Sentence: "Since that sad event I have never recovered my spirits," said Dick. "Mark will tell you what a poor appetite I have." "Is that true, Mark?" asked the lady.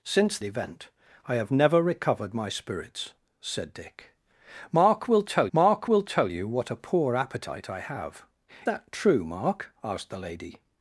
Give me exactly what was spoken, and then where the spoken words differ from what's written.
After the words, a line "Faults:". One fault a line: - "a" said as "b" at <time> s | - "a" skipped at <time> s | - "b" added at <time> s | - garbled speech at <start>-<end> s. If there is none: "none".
"Since event I have never recovered my spirits," said Dick. "Mark will tell mark will tell you what a poor appetite I have." "That true, Mark?" asked the lady.
Faults:
- "that sad" skipped at 0.4 s
- "mark will tell" added at 5.5 s
- "Is" skipped at 8.2 s